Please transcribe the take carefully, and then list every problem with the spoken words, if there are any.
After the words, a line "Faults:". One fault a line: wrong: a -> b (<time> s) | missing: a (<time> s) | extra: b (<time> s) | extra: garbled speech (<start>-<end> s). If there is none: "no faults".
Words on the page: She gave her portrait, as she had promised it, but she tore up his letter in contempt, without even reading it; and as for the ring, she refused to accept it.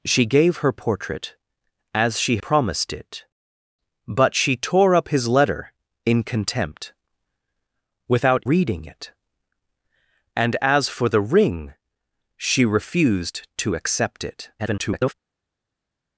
She gave her portrait, as she promised it, but she tore up his letter in contempt, without reading it; and as for the ring, she refused to accept it. [garbled]
Faults:
missing: had (2.4 s)
missing: even (8.4 s)
extra: garbled speech (14.6-15.1 s)